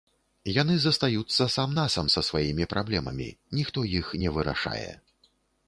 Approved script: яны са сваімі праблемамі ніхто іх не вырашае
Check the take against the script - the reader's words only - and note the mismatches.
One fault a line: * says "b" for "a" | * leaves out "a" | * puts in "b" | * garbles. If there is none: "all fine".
* puts in "застаюцца сам насам"